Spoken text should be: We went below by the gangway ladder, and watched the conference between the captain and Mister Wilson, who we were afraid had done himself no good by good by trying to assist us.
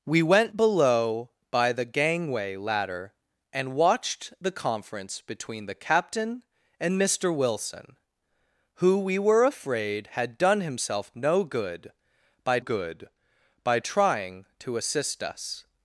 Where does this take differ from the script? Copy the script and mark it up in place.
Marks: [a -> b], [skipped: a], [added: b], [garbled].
We went below by the gangway ladder, and watched the conference between the captain and Mister Wilson, who we were afraid had done himself no good by good by trying to assist us.